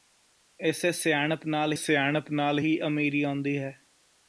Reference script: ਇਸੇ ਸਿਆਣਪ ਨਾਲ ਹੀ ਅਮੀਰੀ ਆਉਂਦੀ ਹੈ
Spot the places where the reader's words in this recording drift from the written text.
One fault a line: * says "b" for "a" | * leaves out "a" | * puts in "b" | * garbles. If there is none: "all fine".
* puts in "ਸਿਆਣਪ ਨਾਲ"